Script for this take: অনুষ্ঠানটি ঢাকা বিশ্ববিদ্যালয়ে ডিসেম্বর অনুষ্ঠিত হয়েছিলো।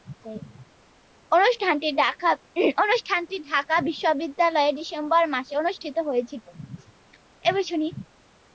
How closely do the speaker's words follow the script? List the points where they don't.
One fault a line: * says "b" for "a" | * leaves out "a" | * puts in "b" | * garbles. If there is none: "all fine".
* puts in "মাসে"